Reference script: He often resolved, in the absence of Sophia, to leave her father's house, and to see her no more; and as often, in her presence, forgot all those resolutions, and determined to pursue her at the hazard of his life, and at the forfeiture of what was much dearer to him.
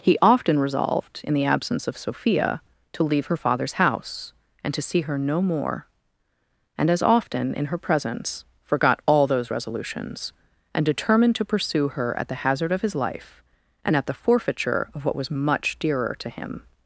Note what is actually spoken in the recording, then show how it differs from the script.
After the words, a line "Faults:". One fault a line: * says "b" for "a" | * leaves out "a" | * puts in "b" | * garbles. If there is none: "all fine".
He often resolved, in the absence of Sophia, to leave her father's house, and to see her no more; and as often, in her presence, forgot all those resolutions, and determined to pursue her at the hazard of his life, and at the forfeiture of what was much dearer to him.
Faults:
all fine